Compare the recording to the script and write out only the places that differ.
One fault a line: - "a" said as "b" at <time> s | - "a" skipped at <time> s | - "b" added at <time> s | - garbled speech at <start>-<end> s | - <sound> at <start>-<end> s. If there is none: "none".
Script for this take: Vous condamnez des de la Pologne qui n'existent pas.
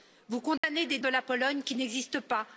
- dropout at 0.6-0.6 s